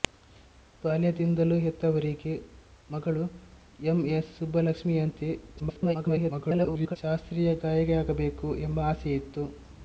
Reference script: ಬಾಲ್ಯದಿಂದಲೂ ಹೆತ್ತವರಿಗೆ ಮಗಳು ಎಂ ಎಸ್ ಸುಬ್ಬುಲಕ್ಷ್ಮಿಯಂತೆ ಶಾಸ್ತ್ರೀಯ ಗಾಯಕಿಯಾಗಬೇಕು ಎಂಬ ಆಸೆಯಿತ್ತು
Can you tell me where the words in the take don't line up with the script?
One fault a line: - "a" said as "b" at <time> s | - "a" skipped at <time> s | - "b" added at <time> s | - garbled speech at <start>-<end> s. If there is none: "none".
- garbled speech at 5.6-7.0 s